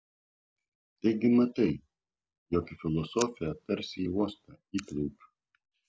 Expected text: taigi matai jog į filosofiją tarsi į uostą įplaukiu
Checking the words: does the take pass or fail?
pass